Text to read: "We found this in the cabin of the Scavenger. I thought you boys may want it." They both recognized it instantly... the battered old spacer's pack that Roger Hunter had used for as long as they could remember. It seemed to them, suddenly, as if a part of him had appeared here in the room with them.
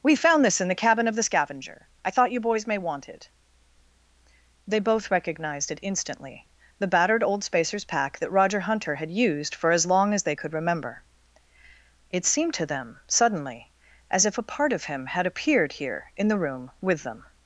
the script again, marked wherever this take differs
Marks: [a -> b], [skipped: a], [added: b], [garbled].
"We found this in the cabin of the Scavenger. I thought you boys may want it." They both recognized it instantly... the battered old spacer's pack that Roger Hunter had used for as long as they could remember. It seemed to them, suddenly, as if a part of him had appeared here in the room with them.